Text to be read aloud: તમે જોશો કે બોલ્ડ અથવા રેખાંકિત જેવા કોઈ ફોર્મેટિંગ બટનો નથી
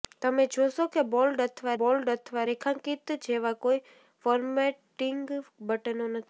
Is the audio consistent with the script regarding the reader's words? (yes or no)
no